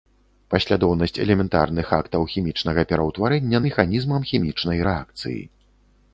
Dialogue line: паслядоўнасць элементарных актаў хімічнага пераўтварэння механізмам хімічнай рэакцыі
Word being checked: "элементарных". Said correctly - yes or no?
yes